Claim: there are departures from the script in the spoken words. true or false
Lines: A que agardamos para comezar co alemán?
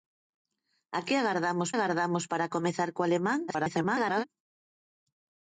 true